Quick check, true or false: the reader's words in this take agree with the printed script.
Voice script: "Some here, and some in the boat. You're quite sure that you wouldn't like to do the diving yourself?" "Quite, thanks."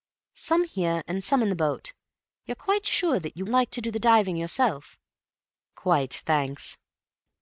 false